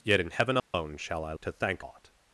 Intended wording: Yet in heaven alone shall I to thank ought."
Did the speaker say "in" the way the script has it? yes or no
yes